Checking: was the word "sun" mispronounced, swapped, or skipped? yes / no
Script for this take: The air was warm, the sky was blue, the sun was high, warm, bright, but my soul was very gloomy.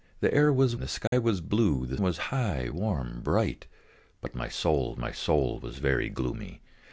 yes